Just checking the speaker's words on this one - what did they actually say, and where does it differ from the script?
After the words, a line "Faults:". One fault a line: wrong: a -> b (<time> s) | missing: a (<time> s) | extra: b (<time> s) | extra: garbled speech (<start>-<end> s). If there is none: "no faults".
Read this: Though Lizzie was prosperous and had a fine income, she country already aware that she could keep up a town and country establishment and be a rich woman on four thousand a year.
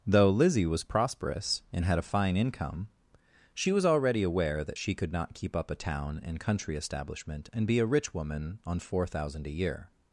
Though Lizzie was prosperous and had a fine income, she was already aware that she could not keep up a town and country establishment and be a rich woman on four thousand a year.
Faults:
wrong: country -> was (3.7 s)
extra: not (5.1 s)